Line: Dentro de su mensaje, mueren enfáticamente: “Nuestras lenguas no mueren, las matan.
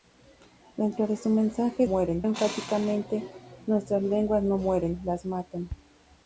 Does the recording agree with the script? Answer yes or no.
yes